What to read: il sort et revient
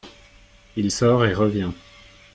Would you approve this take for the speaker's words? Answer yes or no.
yes